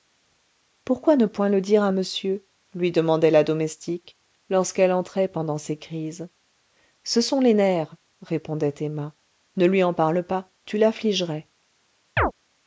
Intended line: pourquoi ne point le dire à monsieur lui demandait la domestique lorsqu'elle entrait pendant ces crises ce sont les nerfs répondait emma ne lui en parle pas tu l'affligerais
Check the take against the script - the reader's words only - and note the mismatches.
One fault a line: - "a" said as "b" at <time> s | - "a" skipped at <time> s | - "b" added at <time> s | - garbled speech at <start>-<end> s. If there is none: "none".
none